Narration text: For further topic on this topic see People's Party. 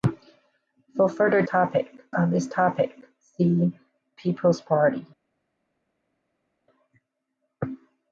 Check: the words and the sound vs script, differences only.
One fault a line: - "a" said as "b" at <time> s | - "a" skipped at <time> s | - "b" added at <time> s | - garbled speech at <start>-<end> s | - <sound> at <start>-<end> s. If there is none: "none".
none